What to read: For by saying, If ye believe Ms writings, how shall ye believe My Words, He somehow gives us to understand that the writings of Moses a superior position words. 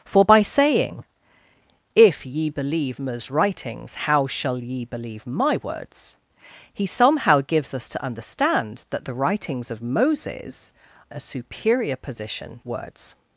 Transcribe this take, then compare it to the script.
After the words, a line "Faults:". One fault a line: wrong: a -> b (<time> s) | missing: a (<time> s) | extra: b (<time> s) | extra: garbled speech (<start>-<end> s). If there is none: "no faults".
For by saying, If ye believe Ms writings, how shall ye believe My Words, He somehow gives us to understand that the writings of Moses a superior position words.
Faults:
no faults